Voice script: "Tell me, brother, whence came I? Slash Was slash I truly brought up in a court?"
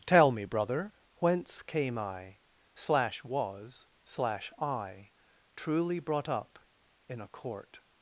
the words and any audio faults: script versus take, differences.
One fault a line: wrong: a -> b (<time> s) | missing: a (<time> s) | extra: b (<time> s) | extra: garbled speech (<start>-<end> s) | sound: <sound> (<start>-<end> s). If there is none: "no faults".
no faults